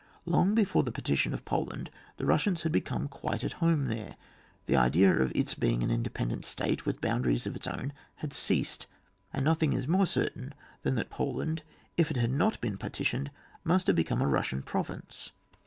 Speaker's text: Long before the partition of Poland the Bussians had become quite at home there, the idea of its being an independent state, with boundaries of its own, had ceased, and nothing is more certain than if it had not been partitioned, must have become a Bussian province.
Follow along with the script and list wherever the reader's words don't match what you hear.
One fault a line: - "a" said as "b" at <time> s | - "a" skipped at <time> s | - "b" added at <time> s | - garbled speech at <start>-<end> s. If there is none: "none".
- "that Poland" added at 10.9 s